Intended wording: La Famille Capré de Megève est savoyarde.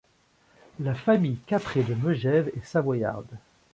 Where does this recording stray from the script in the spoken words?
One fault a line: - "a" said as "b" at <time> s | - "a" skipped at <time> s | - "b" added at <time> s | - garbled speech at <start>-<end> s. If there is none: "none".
none